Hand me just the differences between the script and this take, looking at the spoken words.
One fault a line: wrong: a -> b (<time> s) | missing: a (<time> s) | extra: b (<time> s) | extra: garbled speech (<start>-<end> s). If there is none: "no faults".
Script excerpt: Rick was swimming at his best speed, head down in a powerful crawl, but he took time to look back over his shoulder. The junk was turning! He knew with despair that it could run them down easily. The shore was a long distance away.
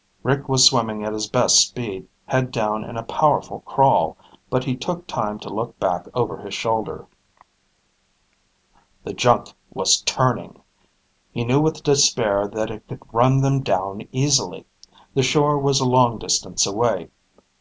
no faults